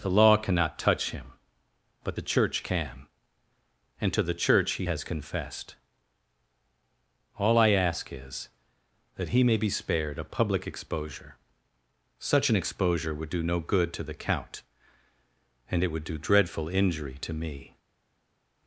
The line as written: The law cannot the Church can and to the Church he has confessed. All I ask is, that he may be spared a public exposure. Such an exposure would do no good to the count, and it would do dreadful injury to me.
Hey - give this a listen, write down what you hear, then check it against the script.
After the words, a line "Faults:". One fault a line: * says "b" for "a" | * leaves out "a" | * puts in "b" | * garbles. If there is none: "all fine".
The law cannot touch him, but the Church can and to the Church he has confessed. All I ask is, that he may be spared a public exposure. Such an exposure would do no good to the count, and it would do dreadful injury to me.
Faults:
* puts in "touch him but"